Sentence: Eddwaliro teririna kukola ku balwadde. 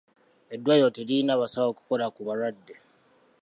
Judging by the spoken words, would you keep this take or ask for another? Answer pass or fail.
fail